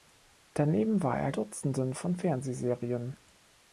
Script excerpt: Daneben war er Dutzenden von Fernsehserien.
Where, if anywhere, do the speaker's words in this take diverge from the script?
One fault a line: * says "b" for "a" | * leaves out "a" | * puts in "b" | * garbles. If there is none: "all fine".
all fine